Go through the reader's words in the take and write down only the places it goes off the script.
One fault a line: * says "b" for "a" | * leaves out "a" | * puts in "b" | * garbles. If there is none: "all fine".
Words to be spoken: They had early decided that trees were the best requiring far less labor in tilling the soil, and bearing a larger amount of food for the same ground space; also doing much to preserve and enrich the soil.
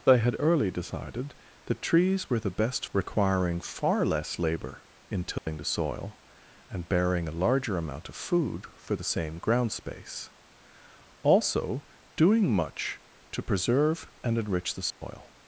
all fine